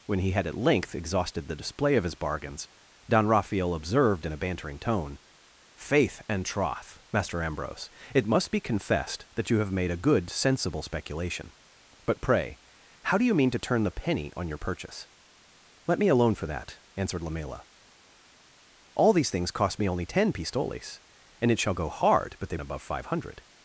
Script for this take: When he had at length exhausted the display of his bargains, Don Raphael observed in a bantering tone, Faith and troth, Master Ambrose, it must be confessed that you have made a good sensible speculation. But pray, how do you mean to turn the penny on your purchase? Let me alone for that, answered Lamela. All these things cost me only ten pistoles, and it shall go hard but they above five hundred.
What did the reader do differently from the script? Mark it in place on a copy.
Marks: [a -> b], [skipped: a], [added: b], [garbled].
When he had at length exhausted the display of his bargains, Don Raphael observed in a bantering tone, Faith and troth, Master Ambrose, it must be confessed that you have made a good sensible speculation. But pray, how do you mean to turn the penny on your purchase? Let me alone for that, answered Lamela. All these things cost me only ten pistoles, and it shall go hard but they above five hundred.